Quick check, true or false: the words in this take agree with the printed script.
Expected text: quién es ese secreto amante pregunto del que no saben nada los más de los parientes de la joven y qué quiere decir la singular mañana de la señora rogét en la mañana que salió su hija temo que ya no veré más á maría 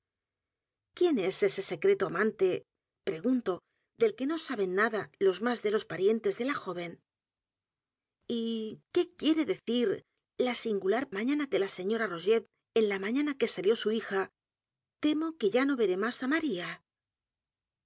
true